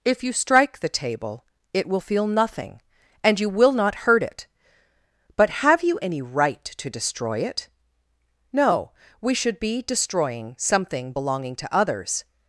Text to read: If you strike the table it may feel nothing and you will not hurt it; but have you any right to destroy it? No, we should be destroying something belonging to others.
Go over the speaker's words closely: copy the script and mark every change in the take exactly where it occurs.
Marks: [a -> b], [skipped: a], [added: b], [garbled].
If you strike the table it [may -> will] feel nothing and you will not hurt it; but have you any right to destroy it? No, we should be destroying something belonging to others.